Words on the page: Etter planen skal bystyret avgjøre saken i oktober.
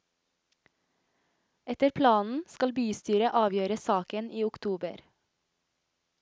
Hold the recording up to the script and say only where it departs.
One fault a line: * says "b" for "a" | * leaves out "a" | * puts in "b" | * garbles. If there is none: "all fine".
all fine